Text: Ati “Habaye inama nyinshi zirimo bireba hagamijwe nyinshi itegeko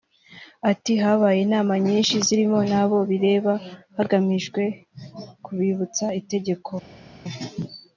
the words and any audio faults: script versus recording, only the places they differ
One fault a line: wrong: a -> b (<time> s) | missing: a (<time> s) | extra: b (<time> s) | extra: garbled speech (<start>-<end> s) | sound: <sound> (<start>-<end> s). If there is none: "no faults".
extra: n'abo (2.7 s)
wrong: nyinshi -> kubibutsa (5.4 s)